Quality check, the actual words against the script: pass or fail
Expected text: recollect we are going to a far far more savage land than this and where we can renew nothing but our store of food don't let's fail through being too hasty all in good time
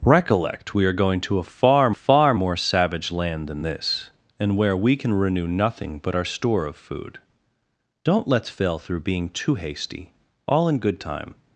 pass